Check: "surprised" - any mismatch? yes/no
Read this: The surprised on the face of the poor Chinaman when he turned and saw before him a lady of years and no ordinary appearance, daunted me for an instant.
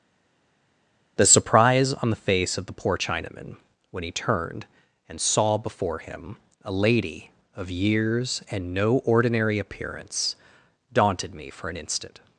yes